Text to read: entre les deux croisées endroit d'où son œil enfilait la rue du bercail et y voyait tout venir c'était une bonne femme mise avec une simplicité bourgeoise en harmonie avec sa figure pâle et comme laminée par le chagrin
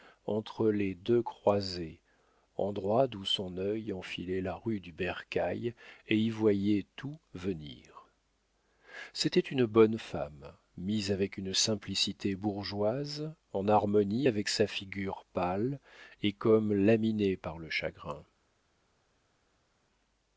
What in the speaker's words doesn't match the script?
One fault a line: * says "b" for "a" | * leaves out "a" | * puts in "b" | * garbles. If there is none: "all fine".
all fine